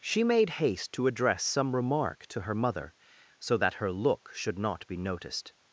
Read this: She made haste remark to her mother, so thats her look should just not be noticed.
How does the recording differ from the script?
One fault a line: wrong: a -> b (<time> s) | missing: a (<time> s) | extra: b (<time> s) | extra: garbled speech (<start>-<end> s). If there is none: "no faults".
extra: to address some (0.9 s)
wrong: thats -> that (3.6 s)
missing: just (4.6 s)